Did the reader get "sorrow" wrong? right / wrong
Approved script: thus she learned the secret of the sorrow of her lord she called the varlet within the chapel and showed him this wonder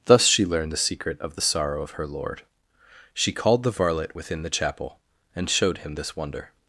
right